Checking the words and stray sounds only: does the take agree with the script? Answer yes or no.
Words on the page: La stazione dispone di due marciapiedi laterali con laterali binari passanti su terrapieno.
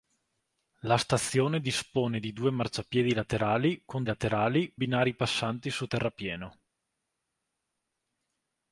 yes